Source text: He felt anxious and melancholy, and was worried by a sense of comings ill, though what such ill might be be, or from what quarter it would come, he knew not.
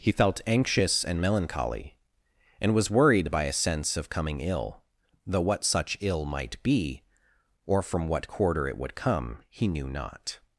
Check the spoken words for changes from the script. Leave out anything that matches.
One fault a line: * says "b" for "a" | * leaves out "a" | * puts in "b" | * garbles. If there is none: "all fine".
* says "coming" for "comings"
* leaves out "be"